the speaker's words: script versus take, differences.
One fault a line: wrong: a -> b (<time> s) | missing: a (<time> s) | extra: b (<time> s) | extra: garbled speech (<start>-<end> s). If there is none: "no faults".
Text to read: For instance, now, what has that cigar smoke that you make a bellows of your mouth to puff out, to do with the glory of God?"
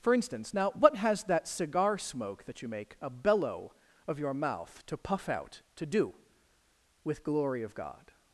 wrong: bellows -> bellow (3.1 s)
missing: the (7.2 s)